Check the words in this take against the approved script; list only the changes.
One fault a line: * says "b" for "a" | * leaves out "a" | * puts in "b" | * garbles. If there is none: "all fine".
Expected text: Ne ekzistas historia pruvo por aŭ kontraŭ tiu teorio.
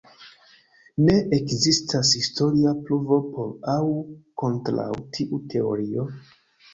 all fine